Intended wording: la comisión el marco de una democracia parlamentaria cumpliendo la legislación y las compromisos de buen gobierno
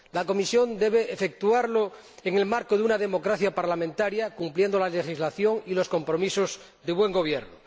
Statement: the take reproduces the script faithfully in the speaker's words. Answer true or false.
false